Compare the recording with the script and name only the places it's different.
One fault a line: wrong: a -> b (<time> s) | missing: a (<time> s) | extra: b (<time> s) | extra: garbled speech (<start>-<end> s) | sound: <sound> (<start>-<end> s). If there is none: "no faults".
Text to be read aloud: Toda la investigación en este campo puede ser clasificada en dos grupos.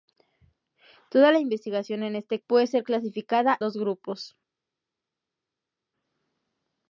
missing: campo (2.4 s)
missing: en (3.6 s)